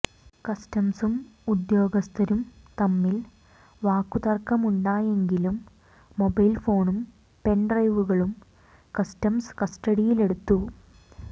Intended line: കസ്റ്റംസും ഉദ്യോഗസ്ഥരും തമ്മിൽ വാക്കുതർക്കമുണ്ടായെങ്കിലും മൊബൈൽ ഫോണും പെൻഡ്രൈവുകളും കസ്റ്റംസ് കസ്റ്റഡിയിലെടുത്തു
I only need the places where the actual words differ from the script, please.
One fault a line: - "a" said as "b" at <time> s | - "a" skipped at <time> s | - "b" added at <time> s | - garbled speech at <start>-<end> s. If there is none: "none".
none